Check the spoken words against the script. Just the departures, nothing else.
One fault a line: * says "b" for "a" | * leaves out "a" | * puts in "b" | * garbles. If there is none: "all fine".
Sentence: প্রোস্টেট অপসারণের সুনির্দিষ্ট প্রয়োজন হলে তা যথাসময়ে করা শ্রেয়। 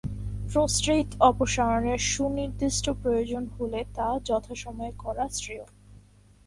all fine